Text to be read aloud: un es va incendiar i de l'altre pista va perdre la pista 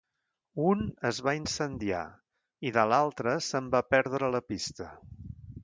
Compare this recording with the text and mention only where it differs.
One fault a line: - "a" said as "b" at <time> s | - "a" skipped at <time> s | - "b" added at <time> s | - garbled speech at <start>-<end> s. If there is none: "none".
- "pista" said as "se'n" at 3.5 s